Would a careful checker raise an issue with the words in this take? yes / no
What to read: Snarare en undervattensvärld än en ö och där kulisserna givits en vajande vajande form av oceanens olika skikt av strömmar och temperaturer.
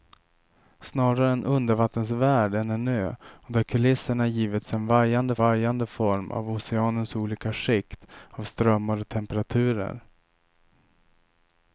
no